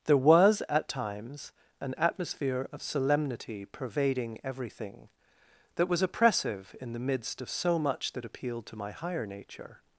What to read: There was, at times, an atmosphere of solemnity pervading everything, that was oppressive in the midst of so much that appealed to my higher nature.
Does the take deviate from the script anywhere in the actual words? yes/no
no